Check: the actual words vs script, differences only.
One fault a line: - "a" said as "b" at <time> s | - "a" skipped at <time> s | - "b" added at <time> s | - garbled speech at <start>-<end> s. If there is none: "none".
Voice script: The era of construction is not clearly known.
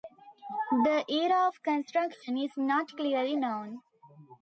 none